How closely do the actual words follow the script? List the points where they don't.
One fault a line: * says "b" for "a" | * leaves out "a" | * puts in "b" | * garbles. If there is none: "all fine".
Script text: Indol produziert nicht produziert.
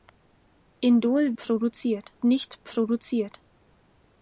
all fine